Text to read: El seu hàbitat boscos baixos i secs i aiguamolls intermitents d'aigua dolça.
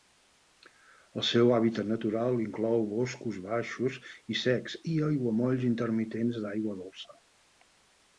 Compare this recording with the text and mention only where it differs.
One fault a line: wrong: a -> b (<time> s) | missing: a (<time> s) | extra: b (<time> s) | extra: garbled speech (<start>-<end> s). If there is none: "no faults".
extra: natural inclou (1.9 s)